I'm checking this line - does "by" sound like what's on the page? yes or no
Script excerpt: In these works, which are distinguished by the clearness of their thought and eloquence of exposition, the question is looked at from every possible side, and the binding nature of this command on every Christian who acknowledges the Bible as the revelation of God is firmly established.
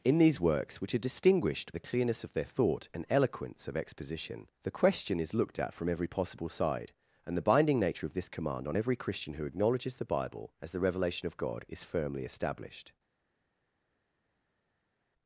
no